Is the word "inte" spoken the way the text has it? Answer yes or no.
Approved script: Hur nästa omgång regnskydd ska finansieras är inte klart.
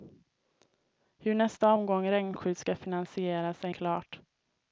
no